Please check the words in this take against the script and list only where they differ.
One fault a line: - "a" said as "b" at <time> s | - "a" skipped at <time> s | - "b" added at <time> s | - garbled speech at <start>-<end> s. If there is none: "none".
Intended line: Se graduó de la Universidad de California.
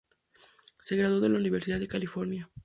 none